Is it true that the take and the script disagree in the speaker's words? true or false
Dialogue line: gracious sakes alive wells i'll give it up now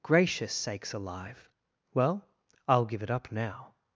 true